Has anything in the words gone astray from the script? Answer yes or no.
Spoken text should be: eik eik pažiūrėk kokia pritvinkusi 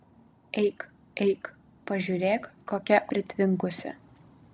no